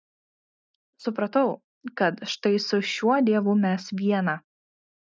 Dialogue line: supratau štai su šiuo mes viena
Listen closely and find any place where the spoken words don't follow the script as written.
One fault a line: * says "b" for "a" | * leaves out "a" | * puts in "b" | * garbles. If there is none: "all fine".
* puts in "kad"
* puts in "dievu"